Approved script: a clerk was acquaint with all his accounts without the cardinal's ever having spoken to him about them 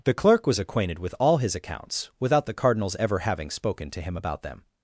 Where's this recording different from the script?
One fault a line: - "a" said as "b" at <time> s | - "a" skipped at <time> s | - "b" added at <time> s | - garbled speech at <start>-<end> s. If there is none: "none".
- "a" said as "the" at 0.0 s
- "acquaint" said as "acquainted" at 0.6 s